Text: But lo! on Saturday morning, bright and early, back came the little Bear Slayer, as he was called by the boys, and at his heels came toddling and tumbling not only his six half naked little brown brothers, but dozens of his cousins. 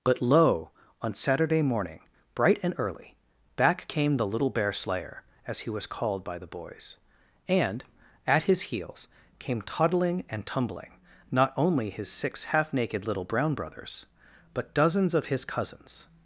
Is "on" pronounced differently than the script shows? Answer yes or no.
no